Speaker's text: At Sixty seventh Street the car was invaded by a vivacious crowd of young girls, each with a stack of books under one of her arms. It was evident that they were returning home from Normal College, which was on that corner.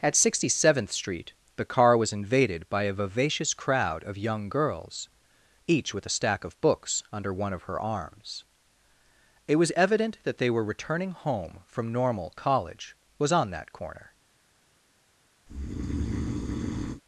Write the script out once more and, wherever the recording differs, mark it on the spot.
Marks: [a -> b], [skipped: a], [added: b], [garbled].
At Sixty seventh Street the car was invaded by a vivacious crowd of young girls, each with a stack of books under one of her arms. It was evident that they were returning home from Normal College, [skipped: which] was on that corner.